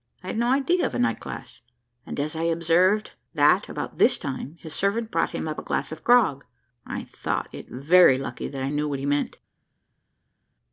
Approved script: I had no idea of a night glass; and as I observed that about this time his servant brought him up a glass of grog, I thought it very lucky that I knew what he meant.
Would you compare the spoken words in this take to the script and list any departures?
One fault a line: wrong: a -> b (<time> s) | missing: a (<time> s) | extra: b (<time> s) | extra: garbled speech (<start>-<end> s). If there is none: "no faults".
no faults